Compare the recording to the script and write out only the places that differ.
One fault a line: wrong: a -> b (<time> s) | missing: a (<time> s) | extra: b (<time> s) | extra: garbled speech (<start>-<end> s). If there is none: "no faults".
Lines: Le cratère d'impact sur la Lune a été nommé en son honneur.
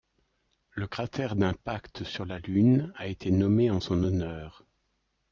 no faults